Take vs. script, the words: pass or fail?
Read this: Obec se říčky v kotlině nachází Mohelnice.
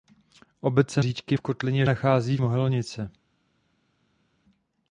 pass